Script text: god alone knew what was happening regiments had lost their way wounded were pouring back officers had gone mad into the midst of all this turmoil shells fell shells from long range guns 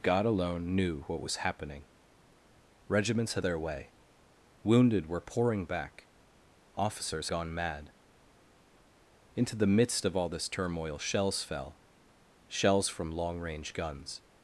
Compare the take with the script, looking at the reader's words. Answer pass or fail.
fail